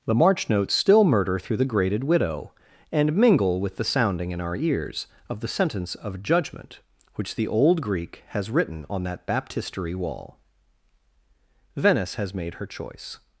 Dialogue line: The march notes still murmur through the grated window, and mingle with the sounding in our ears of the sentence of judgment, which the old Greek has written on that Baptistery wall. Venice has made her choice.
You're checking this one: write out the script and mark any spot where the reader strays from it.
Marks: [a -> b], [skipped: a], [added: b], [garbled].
The march notes still [murmur -> murder] through the grated [window, -> widow] and mingle with the sounding in our ears of the sentence of judgment, which the old Greek has written on that Baptistery wall. Venice has made her choice.